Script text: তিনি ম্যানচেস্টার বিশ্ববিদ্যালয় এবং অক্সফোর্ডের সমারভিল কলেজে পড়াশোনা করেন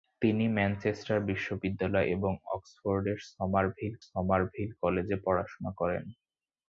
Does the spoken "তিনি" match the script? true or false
true